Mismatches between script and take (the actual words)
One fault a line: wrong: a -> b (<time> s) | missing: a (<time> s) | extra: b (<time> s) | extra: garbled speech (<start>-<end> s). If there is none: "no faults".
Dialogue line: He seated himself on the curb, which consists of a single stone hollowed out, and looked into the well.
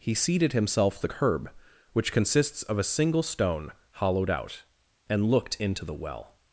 missing: on (1.0 s)